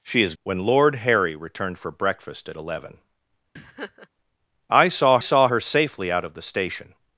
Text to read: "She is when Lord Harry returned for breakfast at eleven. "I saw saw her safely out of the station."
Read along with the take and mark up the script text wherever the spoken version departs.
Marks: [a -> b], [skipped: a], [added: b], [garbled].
"She is when Lord Harry returned for breakfast at eleven. "I saw saw her safely out of the station."